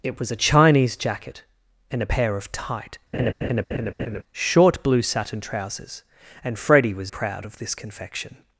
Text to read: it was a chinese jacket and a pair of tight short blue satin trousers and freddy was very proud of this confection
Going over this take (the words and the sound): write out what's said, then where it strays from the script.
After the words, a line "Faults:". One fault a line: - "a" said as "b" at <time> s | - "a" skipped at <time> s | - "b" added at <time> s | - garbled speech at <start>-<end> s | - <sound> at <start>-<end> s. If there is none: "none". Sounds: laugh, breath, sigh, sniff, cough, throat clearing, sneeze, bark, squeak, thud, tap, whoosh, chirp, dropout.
it was a chinese jacket and a pair of tight short blue satin trousers and freddy was proud of this confection
Faults:
- laugh at 3.1-4.2 s
- "very" skipped at 7.1 s